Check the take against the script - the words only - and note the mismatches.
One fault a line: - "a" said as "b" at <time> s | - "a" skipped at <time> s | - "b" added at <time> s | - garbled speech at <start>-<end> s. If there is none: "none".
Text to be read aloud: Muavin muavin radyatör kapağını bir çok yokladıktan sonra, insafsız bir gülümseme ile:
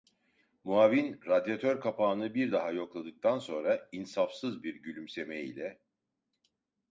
- "muavin" skipped at 1.2 s
- "çok" said as "daha" at 2.5 s